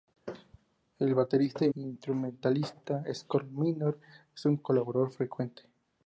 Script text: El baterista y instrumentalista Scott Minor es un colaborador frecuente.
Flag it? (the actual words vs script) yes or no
no